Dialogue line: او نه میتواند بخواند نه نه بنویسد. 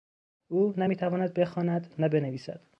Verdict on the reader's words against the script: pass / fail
fail